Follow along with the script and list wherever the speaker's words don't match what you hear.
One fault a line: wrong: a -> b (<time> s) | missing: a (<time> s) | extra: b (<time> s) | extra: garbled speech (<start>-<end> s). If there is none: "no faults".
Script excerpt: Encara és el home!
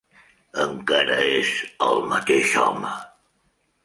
extra: mateix (2.1 s)